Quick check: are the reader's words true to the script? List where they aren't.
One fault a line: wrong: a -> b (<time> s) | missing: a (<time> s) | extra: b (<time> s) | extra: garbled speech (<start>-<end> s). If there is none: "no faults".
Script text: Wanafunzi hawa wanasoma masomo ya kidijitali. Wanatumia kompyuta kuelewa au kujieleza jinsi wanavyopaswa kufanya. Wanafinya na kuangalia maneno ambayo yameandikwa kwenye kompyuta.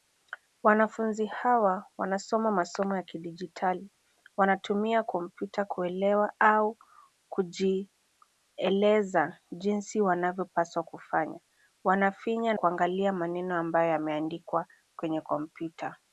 missing: na (12.6 s)